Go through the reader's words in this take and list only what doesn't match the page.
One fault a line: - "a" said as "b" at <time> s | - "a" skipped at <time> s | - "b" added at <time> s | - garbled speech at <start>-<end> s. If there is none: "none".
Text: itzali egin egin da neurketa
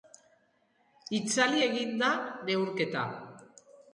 - "egin" skipped at 1.9 s